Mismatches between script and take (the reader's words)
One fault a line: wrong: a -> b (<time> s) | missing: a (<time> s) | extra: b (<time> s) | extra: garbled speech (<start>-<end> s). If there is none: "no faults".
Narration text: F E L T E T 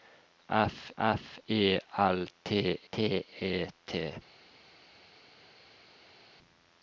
extra: f (1.0 s)
extra: T (2.9 s)